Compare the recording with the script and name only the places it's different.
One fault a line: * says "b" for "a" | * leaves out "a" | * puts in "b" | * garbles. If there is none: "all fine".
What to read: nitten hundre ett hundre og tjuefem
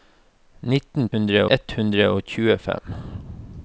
all fine